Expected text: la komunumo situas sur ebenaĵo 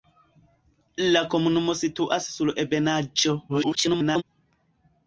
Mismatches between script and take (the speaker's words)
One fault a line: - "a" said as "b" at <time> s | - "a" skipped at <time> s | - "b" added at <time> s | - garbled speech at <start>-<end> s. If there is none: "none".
- garbled speech at 3.5-4.2 s